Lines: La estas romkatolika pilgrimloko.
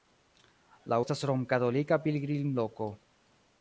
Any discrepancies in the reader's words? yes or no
no